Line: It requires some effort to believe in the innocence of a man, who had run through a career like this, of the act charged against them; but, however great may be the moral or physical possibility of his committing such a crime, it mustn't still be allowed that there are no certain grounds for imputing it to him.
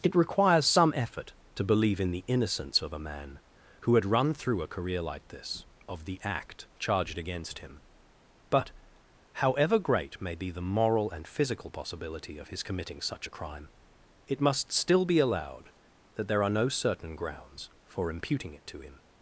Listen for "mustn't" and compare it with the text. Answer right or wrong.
wrong